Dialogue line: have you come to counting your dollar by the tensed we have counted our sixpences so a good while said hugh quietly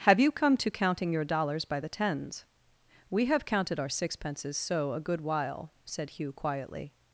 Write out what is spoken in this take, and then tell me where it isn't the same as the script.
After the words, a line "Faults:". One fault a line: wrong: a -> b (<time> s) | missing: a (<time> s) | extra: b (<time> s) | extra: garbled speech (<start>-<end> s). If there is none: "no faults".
have you come to counting your dollars by the tens we have counted our sixpences so a good while said hugh quietly
Faults:
wrong: dollar -> dollars (1.2 s)
wrong: tensed -> tens (1.9 s)